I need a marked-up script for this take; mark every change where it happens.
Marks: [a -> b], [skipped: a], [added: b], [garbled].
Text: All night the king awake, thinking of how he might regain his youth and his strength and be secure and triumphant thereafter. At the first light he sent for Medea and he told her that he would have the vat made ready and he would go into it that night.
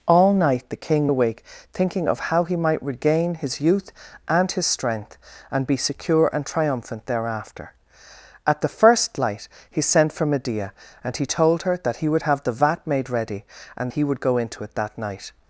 All night the king awake, thinking of how he might regain his youth and his strength and be secure and triumphant thereafter. At the first light he sent for Medea and he told her that he would have the vat made ready and he would go into it that night.